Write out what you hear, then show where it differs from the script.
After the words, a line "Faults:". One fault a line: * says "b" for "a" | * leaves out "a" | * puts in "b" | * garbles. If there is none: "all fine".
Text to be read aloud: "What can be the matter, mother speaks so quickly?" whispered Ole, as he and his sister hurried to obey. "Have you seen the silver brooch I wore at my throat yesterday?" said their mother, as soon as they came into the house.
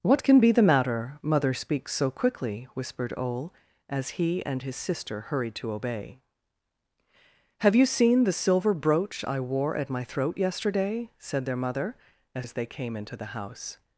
"What can be the matter, mother speaks so quickly?" whispered Ole, as he and his sister hurried to obey. "Have you seen the silver brooch I wore at my throat yesterday?" said their mother, as as they came into the house.
Faults:
* leaves out "soon"